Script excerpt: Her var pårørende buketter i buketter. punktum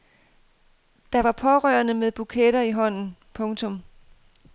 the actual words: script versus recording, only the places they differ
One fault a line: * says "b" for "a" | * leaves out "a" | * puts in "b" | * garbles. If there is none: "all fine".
* says "Der" for "Her"
* puts in "med"
* says "hånden" for "buketter"